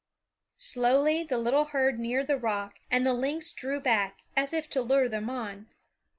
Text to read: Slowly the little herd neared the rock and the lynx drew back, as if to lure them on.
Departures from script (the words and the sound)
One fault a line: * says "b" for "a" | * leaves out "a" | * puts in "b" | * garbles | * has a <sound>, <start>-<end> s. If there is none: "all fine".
all fine